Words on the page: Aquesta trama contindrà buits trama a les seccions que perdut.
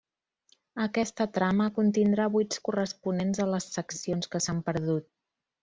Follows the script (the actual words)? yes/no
no